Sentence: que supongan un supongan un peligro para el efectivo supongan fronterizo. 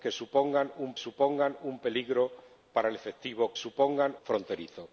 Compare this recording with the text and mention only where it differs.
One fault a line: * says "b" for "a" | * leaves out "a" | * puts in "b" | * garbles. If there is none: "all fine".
all fine